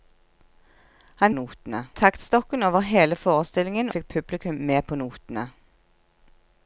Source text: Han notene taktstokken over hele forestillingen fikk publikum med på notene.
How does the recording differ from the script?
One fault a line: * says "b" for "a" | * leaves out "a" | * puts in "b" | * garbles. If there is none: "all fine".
all fine